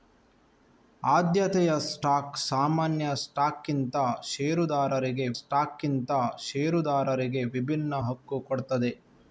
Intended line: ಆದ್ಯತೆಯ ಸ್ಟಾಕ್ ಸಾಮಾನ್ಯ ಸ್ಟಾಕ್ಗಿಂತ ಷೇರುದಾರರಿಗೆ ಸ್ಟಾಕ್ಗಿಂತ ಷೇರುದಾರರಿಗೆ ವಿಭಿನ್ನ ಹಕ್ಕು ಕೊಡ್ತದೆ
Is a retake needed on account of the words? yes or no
no